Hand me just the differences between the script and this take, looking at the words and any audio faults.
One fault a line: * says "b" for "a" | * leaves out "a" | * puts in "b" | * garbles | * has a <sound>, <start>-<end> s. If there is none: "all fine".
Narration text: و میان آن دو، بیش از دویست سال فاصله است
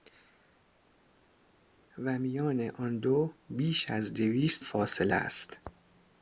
* leaves out "سال"